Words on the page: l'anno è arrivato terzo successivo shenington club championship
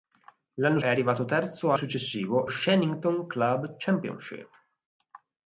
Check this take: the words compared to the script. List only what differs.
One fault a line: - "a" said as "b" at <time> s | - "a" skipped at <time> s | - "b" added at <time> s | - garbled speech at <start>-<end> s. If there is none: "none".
none